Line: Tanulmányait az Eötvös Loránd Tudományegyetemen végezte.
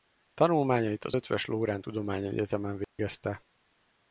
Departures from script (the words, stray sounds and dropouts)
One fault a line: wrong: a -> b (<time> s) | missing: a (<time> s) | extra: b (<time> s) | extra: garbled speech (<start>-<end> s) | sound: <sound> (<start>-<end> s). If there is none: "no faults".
sound: dropout (2.8-3.0 s)